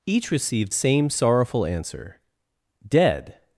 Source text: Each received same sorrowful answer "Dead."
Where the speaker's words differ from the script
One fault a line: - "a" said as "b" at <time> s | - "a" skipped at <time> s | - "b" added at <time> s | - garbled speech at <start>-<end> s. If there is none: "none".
none